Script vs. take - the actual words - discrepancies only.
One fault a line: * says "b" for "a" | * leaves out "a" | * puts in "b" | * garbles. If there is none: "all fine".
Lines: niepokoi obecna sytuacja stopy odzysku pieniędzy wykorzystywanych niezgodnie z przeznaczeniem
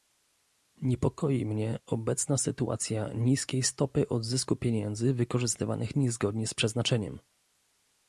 * puts in "mnie"
* puts in "niskiej"